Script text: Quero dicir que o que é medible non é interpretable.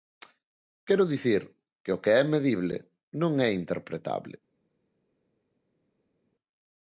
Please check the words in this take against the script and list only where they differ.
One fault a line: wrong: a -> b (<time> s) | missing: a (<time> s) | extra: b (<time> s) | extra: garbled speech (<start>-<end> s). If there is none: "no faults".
no faults